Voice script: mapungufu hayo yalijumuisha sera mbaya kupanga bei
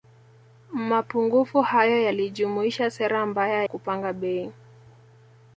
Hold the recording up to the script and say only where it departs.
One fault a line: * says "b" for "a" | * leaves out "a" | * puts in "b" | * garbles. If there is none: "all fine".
all fine